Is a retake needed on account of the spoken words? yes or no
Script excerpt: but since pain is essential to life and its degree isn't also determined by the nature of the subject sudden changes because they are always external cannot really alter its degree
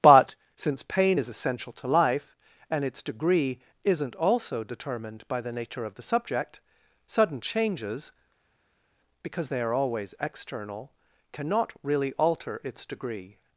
no